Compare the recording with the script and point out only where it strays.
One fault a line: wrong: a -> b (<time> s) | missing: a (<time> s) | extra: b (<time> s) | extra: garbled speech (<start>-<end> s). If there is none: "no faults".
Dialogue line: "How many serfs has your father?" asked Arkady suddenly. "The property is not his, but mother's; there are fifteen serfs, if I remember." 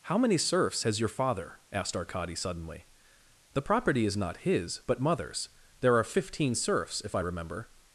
no faults